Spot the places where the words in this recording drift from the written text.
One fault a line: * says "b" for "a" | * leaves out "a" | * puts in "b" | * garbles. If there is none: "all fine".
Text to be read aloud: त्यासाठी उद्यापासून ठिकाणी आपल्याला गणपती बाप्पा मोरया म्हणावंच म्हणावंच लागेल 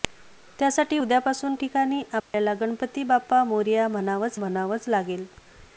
all fine